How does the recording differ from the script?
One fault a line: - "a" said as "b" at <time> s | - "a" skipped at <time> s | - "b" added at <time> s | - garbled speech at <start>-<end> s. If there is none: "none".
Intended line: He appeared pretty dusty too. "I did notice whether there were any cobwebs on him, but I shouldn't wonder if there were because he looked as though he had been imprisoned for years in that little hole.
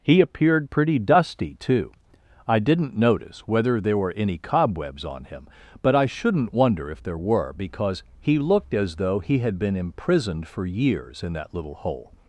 - "did" said as "didn't" at 2.6 s